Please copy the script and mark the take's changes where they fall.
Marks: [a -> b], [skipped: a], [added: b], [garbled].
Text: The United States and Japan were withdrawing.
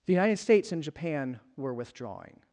The United States and Japan were withdrawing.